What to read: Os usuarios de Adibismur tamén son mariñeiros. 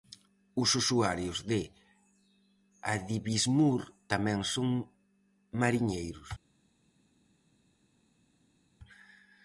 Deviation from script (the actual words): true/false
false